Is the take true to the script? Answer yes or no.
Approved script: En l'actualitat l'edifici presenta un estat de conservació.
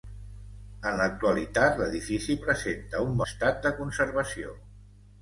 yes